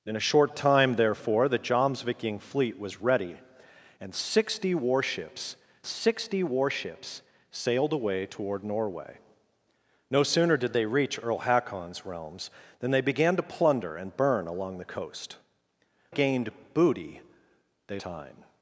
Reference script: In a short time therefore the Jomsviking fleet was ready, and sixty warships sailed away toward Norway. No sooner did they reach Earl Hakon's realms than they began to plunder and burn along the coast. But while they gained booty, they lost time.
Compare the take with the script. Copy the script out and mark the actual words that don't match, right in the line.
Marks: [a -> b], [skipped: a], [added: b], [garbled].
In a short time therefore the Jomsviking fleet was ready, and sixty warships [added: sixty warships] sailed away toward Norway. No sooner did they reach Earl Hakon's realms than they began to plunder and burn along the coast. [skipped: But while they] gained booty, they [skipped: lost] time.